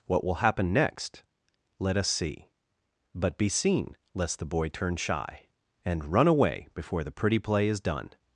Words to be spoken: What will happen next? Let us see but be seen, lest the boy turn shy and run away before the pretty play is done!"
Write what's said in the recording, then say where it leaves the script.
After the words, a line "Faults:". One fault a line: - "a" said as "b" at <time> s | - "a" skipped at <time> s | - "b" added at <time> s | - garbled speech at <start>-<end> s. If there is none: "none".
What will happen next? Let us see but be seen, lest the boy turn shy and run away before the pretty play is done!"
Faults:
none